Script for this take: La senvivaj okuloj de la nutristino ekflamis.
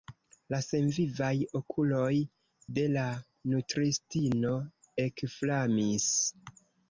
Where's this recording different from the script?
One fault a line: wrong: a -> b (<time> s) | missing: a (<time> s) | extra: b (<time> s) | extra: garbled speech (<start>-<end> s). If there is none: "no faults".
no faults